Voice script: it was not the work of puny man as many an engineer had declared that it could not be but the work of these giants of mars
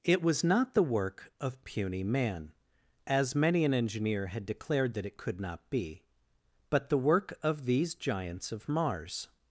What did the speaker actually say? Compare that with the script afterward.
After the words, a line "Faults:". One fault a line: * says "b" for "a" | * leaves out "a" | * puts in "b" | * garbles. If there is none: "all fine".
it was not the work of puny man as many an engineer had declared that it could not be but the work of these giants of mars
Faults:
all fine